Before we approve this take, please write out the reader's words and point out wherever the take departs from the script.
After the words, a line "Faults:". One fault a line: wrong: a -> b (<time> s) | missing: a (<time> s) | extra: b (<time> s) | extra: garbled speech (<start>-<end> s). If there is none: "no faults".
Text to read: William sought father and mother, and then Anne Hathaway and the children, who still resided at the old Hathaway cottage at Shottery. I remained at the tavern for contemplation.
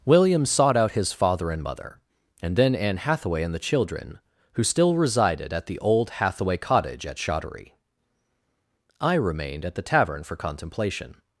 William sought out his father and mother, and then Anne Hathaway and the children, who still resided at the old Hathaway cottage at Shottery. I remained at the tavern for contemplation.
Faults:
extra: out his (0.8 s)